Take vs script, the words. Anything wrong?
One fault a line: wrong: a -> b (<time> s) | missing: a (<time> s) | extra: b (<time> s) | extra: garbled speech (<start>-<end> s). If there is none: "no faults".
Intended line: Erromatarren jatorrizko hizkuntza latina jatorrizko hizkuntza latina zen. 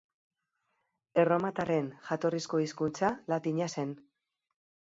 missing: jatorrizko hizkuntza latina (3.7 s)